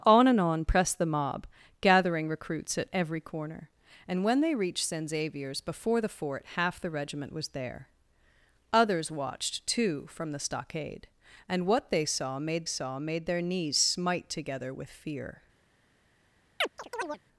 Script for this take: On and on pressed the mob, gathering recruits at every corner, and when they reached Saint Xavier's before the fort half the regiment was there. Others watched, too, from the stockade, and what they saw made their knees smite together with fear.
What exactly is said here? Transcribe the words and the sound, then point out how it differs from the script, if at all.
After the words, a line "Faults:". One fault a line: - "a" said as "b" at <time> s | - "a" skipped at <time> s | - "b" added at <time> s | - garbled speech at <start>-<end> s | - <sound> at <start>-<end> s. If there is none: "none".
On and on pressed the mob, gathering recruits at every corner, and when they reached Saint Xavier's before the fort half the regiment was there. Others watched, too, from the stockade, and what they saw made saw made their knees smite together with fear.
Faults:
- "saw made" added at 12.6 s
- chirp at 16.6-17.2 s